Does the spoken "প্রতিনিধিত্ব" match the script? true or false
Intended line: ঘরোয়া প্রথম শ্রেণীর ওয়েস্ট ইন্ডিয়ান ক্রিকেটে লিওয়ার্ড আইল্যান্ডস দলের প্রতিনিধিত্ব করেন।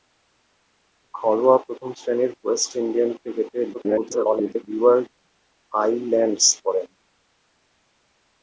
false